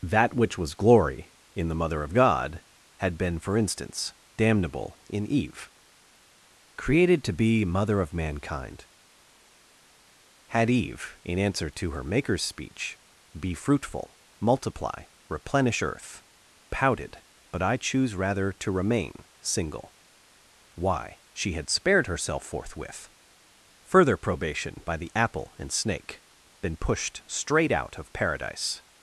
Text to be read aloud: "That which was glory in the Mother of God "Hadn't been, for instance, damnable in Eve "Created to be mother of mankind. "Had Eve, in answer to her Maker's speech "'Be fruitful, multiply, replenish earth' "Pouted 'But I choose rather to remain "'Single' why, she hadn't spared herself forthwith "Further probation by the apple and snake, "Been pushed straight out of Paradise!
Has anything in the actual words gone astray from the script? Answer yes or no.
yes